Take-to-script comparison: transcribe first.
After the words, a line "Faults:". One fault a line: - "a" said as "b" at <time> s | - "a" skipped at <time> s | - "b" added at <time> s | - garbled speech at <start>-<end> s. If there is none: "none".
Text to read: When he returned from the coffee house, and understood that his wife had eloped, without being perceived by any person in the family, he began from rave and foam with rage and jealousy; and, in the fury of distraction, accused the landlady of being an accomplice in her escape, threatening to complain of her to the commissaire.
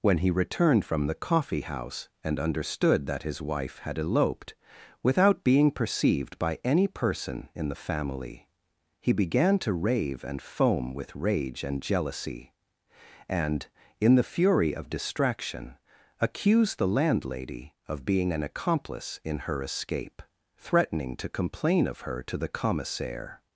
When he returned from the coffee house, and understood that his wife had eloped, without being perceived by any person in the family, he began to rave and foam with rage and jealousy; and, in the fury of distraction, accused the landlady of being an accomplice in her escape, threatening to complain of her to the commissaire.
Faults:
- "from" said as "to" at 9.6 s